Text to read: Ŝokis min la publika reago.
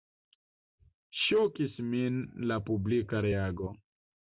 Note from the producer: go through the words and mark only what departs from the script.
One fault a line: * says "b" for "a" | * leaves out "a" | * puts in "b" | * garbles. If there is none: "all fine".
all fine